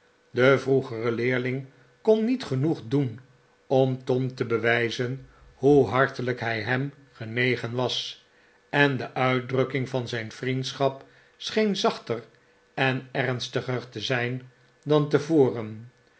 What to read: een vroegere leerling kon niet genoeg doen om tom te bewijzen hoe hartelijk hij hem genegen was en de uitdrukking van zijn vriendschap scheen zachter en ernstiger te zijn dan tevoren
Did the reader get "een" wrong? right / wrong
wrong